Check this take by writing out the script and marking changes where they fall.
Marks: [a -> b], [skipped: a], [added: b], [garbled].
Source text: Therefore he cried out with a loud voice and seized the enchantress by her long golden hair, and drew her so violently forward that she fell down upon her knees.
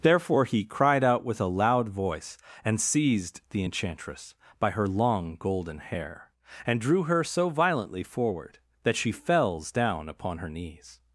Therefore he cried out with a loud voice and seized the enchantress by her long golden hair, and drew her so violently forward that she [fell -> fells] down upon her knees.